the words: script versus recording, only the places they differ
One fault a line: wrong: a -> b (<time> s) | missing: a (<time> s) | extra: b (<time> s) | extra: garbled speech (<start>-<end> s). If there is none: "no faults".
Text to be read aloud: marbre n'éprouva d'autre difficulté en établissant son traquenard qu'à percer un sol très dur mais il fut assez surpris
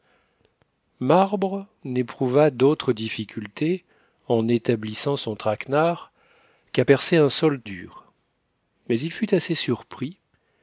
missing: très (7.6 s)